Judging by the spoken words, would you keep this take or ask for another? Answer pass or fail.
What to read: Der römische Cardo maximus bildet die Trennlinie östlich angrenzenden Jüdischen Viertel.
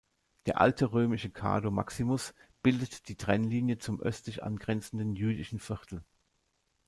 fail